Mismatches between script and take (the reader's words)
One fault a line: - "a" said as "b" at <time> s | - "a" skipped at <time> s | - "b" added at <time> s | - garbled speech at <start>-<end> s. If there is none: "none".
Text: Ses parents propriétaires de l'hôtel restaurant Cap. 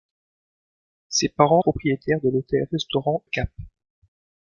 none